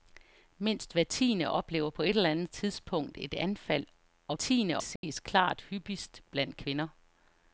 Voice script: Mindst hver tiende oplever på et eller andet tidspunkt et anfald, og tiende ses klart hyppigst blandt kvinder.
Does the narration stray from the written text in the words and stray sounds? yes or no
yes